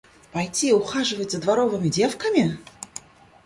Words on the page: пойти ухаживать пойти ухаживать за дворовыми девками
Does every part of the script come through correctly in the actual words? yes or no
no